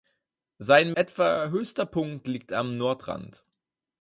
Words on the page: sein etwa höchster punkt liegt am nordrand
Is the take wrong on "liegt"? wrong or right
right